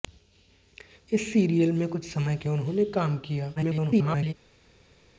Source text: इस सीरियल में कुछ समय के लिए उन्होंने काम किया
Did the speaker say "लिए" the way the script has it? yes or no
no